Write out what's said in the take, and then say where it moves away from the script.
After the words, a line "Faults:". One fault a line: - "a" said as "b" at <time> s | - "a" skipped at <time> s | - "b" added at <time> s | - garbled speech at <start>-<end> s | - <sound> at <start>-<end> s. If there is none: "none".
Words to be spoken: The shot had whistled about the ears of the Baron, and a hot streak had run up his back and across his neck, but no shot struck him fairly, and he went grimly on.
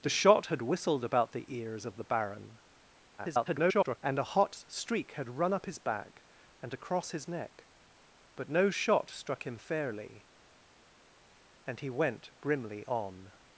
The shot had whistled about the ears of the Baron, [garbled] and a hot streak had run up his back and across his neck, but no shot struck him fairly, and he went grimly on.
Faults:
- garbled speech at 3.2-4.0 s